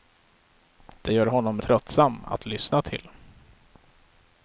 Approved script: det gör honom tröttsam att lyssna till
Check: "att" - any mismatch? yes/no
no